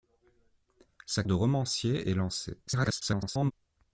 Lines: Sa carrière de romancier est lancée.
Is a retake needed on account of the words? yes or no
yes